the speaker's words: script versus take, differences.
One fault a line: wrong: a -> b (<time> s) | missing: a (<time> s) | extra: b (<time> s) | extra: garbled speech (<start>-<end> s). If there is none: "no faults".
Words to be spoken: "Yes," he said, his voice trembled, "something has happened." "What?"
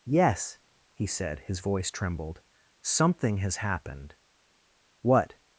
no faults